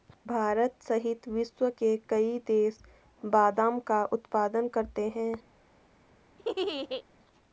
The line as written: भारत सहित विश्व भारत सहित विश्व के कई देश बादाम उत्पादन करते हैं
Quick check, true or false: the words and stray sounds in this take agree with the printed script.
false